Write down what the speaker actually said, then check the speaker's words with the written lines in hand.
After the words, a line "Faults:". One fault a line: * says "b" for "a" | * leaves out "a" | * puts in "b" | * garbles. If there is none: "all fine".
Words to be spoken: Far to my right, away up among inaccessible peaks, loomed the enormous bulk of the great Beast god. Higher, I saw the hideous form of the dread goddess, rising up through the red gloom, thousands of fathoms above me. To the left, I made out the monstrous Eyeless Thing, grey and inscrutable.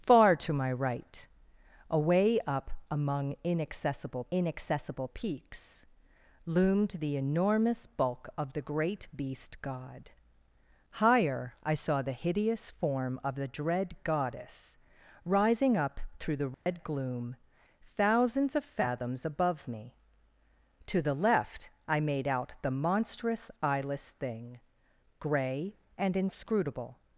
Far to my right, away up among inaccessible inaccessible peaks, loomed the enormous bulk of the great Beast god. Higher, I saw the hideous form of the dread goddess, rising up through the red gloom, thousands of fathoms above me. To the left, I made out the monstrous Eyeless Thing, grey and inscrutable.
Faults:
* puts in "inaccessible"